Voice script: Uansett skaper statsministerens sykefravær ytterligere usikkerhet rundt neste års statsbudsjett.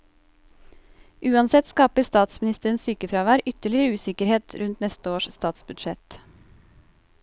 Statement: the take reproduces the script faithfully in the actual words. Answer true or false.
true